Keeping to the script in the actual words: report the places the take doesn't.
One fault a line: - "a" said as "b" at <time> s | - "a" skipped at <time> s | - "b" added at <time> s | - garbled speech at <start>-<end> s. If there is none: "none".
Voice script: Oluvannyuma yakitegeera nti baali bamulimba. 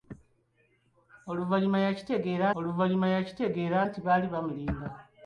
- "oluvannyuma yakitegeera" added at 2.6 s